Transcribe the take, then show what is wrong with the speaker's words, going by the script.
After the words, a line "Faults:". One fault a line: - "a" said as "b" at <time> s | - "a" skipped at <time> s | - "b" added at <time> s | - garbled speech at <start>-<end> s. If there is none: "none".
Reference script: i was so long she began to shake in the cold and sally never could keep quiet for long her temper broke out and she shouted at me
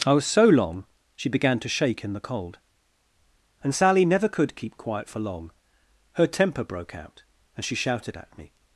i was so long she began to shake in the cold and sally never could keep quiet for long her temper broke out and she shouted at me
Faults:
none